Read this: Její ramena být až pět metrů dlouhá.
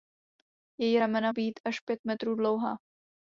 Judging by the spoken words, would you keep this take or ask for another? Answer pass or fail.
pass